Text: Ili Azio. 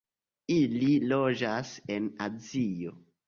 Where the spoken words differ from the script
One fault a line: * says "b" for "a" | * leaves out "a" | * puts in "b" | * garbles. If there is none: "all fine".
* puts in "loĝas en"